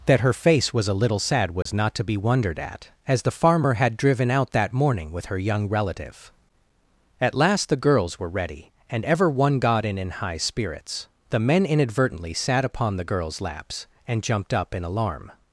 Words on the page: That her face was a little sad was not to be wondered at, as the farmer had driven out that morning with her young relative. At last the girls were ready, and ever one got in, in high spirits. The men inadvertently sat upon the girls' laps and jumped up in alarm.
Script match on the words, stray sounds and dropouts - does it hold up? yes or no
no